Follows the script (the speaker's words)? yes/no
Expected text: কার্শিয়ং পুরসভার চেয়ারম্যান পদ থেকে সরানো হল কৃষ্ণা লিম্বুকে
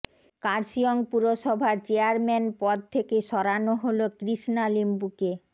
yes